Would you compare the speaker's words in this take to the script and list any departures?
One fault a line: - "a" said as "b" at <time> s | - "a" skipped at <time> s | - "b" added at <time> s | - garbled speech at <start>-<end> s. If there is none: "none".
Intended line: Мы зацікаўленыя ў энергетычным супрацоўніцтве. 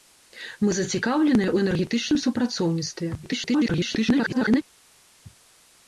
- garbled speech at 3.2-4.6 s